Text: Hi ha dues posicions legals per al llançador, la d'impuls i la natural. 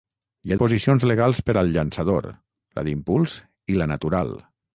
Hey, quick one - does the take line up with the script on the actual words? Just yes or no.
no